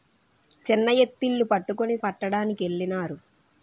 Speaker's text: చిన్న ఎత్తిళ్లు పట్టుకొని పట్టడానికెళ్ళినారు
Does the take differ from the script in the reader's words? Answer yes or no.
no